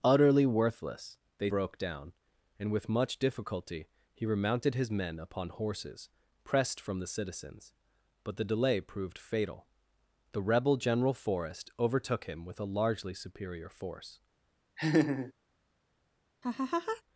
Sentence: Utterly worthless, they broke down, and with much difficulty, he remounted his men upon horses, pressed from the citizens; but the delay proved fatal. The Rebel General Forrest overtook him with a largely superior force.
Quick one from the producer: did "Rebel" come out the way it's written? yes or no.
yes